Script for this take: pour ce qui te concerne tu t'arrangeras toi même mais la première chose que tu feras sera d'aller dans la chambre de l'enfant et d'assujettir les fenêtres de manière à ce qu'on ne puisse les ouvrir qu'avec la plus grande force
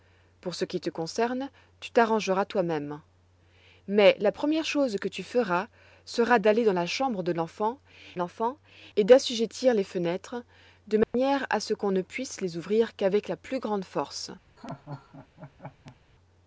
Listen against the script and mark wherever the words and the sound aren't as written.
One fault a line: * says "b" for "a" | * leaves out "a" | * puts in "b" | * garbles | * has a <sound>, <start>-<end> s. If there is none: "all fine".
* puts in "l'enfant"
* has a dropout, 11.0-11.1 s
* has a laugh, 14.6-16.0 s